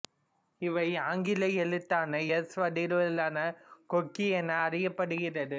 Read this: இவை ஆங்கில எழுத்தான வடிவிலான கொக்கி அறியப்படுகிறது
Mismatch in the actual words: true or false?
true